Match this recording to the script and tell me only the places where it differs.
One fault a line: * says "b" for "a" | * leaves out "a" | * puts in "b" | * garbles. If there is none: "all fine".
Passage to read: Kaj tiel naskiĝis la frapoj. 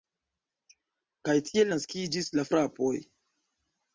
all fine